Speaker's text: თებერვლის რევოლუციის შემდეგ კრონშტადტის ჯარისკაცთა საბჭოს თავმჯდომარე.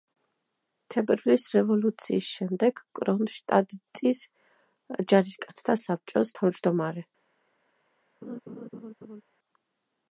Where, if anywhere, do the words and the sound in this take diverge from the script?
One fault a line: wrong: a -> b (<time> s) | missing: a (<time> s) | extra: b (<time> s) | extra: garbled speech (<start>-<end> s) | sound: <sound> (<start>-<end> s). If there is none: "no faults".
sound: laugh (8.2-9.2 s)